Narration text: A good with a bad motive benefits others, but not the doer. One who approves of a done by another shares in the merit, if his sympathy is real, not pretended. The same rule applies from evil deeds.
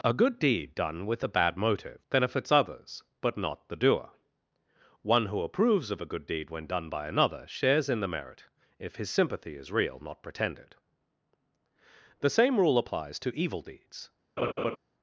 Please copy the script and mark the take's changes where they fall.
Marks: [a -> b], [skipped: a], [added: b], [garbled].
A good [added: deed done] with a bad motive benefits others, but not the doer. One who approves of a [added: good deed when] done by another shares in the merit, if his sympathy is real, not pretended. The same rule applies [from -> to] evil deeds.